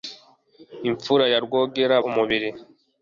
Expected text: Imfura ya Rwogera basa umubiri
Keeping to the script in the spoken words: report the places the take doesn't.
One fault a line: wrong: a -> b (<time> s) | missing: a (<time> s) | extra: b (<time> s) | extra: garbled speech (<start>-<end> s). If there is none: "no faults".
missing: basa (1.9 s)